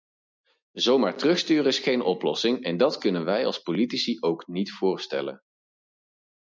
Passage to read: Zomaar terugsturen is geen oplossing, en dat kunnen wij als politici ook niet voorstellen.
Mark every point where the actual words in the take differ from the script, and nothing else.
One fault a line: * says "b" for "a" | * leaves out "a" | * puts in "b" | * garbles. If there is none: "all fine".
all fine